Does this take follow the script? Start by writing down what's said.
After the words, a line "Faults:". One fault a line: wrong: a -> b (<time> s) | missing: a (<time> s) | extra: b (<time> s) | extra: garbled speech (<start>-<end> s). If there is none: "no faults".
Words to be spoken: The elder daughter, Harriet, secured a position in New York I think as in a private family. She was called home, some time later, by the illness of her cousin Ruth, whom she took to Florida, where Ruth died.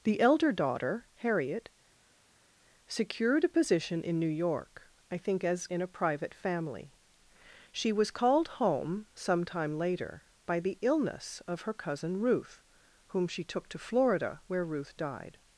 The elder daughter, Harriet, secured a position in New York I think as in a private family. She was called home, some time later, by the illness of her cousin Ruth, whom she took to Florida, where Ruth died.
Faults:
no faults